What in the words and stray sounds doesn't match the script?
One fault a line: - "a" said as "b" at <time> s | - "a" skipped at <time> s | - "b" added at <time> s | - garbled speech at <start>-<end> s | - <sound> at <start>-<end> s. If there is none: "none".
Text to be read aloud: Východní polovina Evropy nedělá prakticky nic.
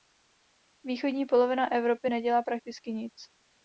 none